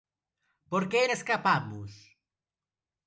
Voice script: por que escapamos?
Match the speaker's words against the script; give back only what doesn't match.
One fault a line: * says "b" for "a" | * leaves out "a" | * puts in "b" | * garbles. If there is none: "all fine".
all fine